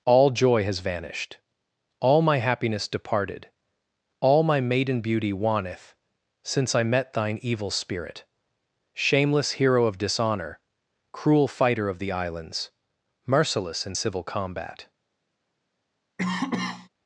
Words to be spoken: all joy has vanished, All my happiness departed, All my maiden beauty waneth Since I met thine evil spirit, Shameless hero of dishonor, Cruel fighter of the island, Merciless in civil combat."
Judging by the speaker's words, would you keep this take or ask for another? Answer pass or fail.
fail